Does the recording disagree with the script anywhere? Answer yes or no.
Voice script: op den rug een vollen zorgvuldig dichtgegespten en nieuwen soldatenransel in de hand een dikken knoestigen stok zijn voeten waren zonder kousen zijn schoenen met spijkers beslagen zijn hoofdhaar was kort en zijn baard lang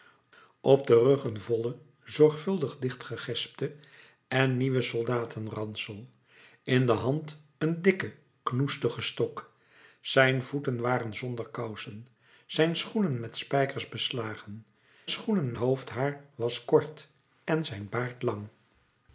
yes